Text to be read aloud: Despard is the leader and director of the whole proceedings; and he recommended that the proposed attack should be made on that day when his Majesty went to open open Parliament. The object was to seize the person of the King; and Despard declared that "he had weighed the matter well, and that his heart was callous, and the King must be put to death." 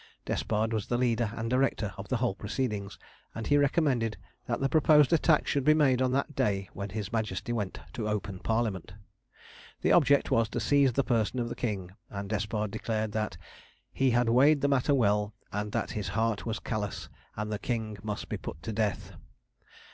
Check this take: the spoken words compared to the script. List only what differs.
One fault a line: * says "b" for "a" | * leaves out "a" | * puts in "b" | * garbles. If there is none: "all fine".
* says "was" for "is"
* leaves out "open"